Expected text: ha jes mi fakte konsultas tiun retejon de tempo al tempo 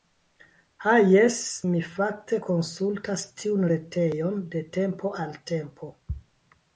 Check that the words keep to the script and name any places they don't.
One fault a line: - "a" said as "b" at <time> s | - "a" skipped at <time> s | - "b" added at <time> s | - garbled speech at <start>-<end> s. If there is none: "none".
none